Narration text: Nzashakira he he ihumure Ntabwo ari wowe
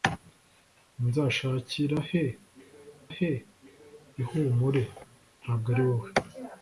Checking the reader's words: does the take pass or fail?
pass